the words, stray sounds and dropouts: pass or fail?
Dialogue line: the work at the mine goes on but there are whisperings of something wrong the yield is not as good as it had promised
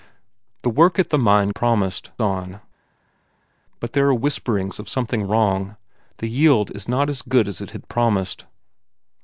fail